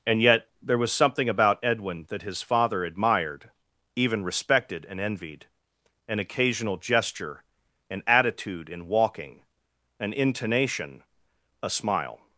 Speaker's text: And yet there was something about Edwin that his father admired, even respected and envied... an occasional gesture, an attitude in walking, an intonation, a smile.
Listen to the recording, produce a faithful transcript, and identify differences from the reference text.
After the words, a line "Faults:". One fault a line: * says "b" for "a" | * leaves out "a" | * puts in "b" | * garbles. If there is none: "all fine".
And yet there was something about Edwin that his father admired, even respected and envied... an occasional gesture, an attitude in walking, an intonation, a smile.
Faults:
all fine